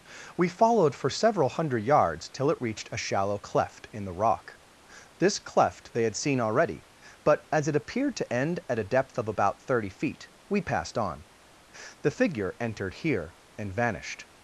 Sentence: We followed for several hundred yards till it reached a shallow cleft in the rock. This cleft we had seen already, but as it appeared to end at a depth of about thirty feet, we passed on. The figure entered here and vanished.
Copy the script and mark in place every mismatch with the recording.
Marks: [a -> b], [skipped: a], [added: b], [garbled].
We followed for several hundred yards till it reached a shallow cleft in the rock. This cleft [we -> they] had seen already, but as it appeared to end at a depth of about thirty feet, we passed on. The figure entered here and vanished.